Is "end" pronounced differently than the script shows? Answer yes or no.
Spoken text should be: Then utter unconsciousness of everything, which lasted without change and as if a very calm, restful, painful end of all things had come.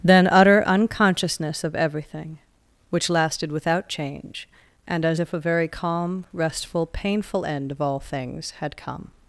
no